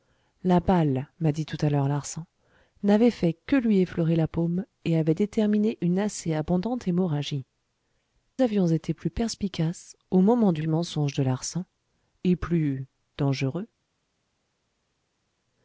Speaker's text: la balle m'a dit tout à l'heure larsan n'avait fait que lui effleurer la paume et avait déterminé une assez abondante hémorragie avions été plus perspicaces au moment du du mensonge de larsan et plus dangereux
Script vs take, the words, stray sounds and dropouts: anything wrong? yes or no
no